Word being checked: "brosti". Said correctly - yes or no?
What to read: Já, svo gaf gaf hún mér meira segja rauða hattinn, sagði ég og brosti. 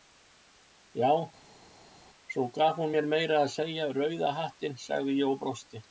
yes